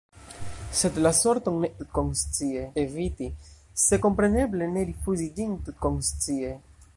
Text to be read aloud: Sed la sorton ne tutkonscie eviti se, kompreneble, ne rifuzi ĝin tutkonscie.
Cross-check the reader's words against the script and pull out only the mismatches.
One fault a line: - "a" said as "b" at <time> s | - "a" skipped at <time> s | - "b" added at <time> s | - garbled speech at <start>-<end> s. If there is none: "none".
none